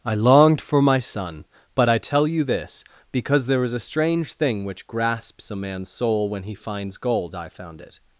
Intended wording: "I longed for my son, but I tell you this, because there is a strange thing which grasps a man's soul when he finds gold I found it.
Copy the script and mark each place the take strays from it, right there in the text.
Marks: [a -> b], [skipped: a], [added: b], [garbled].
"I longed for my son, but I tell you this, because there is a strange thing which grasps a man's soul when he finds gold I found it.